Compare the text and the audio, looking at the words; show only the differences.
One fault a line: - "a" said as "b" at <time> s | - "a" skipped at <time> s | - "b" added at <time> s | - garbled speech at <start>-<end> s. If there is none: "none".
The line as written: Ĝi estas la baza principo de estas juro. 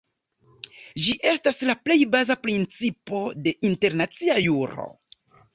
- "plej" added at 1.9 s
- "estas" said as "internacia" at 3.7 s